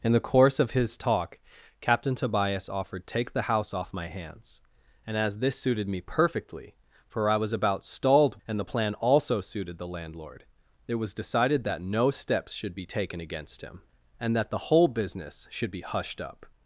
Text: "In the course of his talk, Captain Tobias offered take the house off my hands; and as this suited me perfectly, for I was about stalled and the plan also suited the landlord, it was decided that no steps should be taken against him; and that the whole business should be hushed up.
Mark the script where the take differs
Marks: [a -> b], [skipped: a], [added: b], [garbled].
"In the course of his talk, Captain Tobias offered take the house off my hands; and as this suited me perfectly, for I was about stalled and the plan also suited the landlord, it was decided that no steps should be taken against him; and that the whole business should be hushed up.